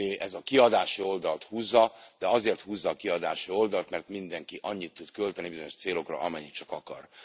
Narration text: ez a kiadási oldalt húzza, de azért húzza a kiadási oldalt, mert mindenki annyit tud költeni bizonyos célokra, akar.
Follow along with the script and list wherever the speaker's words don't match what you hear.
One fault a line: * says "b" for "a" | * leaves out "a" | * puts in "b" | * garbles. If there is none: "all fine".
* puts in "amennyit csak"